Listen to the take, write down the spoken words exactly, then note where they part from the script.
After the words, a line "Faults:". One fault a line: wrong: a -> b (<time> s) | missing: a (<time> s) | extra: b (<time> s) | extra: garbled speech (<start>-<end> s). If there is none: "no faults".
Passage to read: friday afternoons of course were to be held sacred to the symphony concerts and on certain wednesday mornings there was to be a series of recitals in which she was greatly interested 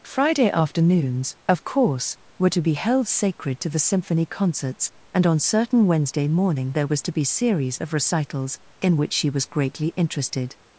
friday afternoons of course were to be held sacred to the symphony concerts and on certain wednesday morning there was to be series of recitals in which she was greatly interested
Faults:
wrong: mornings -> morning (6.3 s)
missing: a (7.2 s)